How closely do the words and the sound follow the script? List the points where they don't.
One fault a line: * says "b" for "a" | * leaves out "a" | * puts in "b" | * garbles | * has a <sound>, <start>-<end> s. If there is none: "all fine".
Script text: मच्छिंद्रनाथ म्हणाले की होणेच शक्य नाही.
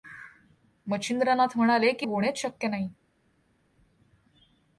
all fine